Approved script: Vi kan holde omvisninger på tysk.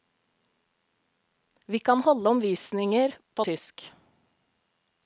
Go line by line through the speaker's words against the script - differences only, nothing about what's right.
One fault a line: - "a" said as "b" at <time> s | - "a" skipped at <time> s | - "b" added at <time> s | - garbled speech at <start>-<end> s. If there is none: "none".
none